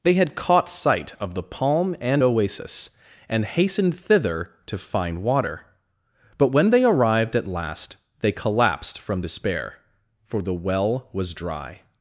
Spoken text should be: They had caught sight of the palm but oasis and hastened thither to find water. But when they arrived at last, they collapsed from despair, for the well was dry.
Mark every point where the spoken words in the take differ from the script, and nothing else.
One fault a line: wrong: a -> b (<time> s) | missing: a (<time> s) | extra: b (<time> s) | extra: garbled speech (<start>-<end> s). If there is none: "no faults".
wrong: but -> and (2.0 s)